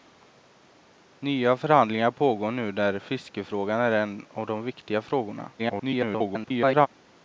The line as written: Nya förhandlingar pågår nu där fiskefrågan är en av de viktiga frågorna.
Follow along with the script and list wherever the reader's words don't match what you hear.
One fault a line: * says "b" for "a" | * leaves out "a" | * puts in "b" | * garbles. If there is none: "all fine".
* garbles